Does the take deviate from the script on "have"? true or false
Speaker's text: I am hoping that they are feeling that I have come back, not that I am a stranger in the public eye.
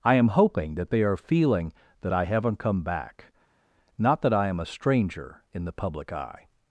true